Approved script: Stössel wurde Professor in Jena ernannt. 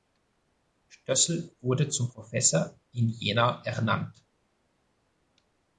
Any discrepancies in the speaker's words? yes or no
yes